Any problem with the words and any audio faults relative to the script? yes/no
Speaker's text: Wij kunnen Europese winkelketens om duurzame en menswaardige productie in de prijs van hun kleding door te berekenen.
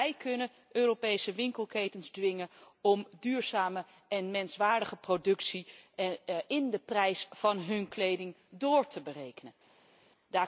yes